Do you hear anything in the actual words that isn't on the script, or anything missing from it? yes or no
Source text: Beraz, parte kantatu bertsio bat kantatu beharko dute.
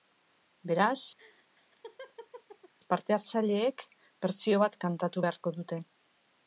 yes